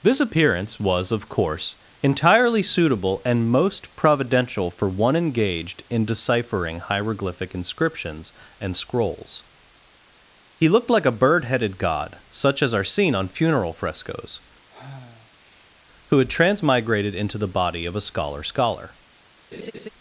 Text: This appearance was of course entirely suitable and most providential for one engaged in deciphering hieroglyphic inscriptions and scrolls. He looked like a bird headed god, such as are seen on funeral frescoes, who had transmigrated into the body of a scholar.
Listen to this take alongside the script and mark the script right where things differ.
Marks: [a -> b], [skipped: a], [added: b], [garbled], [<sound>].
This appearance was of course entirely suitable and most providential for one engaged in deciphering hieroglyphic inscriptions and scrolls. He looked like a bird headed god, such as are seen on funeral frescoes, [sigh] who had transmigrated into the body of a scholar. [added: scholar] [laugh]